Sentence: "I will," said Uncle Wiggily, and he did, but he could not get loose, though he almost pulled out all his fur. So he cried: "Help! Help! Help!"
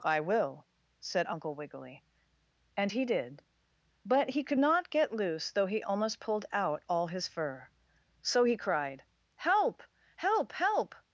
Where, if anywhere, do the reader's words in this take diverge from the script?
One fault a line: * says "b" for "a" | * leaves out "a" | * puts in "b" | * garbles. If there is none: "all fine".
all fine